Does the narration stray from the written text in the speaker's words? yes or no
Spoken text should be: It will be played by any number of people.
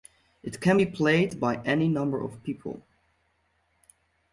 yes